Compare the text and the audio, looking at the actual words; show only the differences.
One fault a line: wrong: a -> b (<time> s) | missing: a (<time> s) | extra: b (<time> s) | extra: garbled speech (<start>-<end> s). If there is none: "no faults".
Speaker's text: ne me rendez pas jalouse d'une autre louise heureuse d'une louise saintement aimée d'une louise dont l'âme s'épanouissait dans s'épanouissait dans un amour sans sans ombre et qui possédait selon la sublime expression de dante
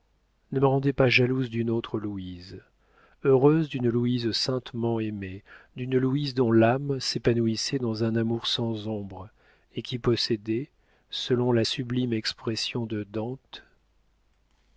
missing: s'épanouissait dans (8.0 s)
missing: sans (8.9 s)